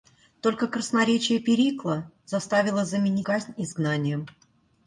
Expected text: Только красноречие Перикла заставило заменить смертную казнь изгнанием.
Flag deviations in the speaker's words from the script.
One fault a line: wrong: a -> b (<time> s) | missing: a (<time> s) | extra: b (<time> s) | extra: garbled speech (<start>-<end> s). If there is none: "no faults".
missing: смертную (3.3 s)